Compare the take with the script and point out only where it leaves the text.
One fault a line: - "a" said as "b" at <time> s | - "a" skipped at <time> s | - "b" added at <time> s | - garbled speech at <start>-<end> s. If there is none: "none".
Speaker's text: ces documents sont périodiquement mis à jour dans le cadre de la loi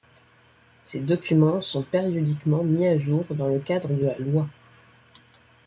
none